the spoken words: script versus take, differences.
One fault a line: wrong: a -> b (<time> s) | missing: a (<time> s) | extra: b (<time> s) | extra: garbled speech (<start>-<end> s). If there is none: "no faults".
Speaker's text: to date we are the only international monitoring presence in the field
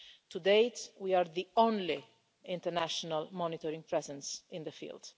no faults